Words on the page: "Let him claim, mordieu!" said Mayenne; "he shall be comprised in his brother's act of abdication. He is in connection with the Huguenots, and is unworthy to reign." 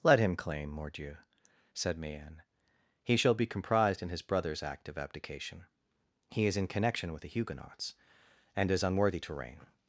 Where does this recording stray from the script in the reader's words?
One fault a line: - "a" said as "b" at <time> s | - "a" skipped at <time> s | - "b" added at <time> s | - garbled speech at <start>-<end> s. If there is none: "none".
none